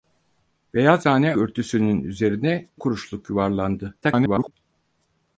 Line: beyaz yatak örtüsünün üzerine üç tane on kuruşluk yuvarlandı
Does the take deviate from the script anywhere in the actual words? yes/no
yes